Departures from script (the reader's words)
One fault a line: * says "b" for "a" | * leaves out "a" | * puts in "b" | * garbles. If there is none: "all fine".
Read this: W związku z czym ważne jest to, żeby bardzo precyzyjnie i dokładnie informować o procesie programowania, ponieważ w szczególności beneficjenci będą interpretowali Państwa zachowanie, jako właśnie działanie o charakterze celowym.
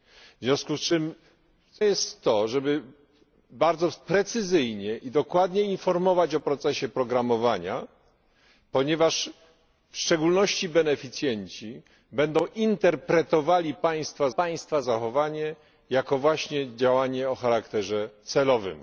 * leaves out "ważne"
* puts in "Państwa"